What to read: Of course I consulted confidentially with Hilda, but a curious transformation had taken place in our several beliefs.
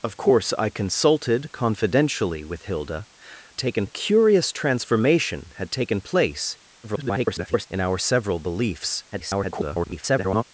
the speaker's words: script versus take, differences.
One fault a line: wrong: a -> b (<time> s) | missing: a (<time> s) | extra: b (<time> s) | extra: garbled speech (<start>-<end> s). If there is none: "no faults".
wrong: but -> taken (3.6 s)
extra: garbled speech (6.8-7.7 s)
extra: garbled speech (9.1-10.4 s)